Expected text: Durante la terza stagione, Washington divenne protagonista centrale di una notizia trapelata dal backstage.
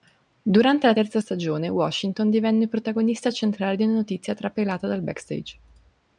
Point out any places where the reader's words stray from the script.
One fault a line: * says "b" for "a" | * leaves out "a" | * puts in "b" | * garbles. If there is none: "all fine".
all fine